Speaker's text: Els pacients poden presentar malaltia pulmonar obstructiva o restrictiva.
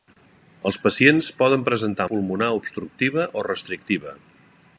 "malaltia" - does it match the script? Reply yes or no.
no